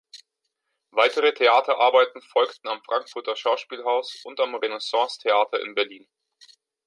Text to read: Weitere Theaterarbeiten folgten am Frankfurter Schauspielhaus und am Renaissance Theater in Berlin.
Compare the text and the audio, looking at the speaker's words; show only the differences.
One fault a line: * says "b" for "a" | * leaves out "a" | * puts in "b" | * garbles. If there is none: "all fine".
all fine